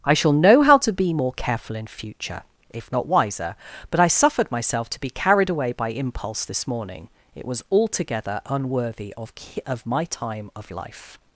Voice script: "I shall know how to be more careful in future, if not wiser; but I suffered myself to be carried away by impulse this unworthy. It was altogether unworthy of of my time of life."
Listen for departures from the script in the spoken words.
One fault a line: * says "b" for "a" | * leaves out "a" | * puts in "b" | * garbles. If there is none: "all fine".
* says "morning" for "unworthy"